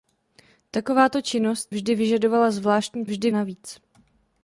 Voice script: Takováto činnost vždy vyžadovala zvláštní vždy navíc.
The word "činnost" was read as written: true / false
true